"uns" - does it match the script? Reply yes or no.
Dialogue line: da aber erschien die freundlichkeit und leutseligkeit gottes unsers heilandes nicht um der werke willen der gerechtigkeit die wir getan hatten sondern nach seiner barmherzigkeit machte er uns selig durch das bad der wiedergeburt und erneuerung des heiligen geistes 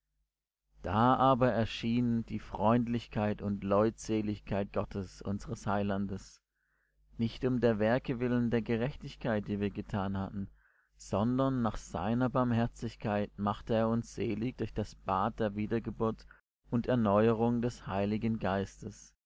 yes